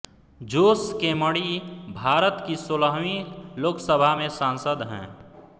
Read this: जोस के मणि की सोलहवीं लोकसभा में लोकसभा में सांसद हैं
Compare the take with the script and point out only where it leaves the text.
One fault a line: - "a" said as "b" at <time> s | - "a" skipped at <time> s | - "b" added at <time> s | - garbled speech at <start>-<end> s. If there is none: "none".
- "भारत" added at 1.9 s
- "लोकसभा में" skipped at 4.3 s